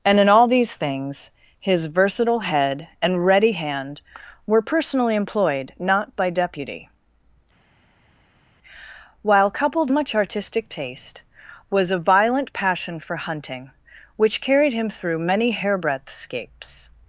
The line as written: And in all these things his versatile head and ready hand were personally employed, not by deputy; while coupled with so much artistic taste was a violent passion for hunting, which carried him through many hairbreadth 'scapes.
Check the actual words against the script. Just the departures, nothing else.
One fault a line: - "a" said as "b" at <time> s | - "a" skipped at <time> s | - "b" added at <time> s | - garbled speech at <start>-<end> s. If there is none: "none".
- "with so" skipped at 9.9 s